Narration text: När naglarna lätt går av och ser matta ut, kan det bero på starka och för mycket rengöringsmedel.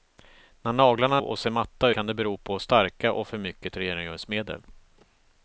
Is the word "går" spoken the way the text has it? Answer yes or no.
no